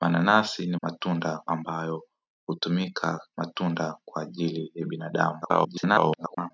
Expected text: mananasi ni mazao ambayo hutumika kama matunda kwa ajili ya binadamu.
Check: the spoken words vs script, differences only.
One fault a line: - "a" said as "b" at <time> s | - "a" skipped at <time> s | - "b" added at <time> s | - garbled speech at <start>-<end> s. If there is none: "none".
- "mazao" said as "matunda" at 0.8 s
- "kama" skipped at 3.2 s
- garbled speech at 5.4-6.5 s